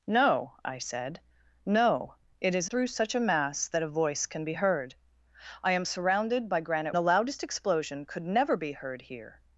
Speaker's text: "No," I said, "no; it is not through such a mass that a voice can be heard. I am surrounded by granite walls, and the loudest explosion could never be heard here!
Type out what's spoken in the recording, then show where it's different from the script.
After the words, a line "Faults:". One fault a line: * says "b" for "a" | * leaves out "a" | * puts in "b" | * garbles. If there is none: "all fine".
"No," I said, "no; it is through such a mass that a voice can be heard. I am surrounded by granite the loudest explosion could never be heard here!
Faults:
* leaves out "not"
* leaves out "walls and"